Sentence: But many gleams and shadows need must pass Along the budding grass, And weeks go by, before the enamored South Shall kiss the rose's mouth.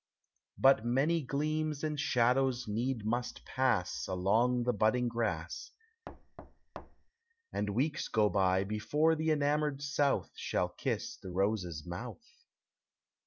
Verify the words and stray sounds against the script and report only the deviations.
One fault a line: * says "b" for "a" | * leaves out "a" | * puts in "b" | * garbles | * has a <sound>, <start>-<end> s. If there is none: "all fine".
* has a thud, 6.1-7.1 s